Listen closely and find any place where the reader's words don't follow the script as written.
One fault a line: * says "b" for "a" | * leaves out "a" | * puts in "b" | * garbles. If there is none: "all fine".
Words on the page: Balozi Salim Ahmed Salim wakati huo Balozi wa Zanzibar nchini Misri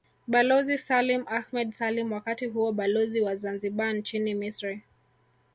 all fine